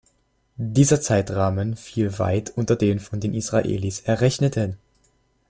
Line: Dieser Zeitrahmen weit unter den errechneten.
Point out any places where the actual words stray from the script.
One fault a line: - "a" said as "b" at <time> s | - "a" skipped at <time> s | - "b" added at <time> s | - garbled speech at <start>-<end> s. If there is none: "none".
- "fiel" added at 1.8 s
- "von den Israelis" added at 3.0 s